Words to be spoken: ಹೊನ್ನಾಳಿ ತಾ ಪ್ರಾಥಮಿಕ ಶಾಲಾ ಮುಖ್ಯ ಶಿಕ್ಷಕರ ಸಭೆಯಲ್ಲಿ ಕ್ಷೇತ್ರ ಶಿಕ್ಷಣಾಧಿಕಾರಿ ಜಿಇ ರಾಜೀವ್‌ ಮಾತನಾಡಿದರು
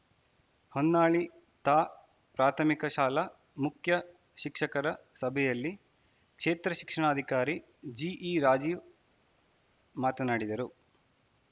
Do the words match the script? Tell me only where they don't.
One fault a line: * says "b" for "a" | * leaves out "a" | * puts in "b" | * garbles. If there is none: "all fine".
all fine